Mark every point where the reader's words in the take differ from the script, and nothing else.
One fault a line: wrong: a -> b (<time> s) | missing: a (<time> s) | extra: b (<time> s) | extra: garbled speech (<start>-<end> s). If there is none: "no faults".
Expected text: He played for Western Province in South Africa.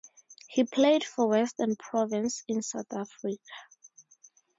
no faults